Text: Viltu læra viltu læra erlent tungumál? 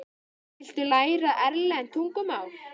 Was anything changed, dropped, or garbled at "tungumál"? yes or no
no